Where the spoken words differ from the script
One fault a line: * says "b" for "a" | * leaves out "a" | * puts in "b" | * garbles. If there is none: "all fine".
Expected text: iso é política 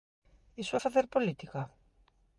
* puts in "facer"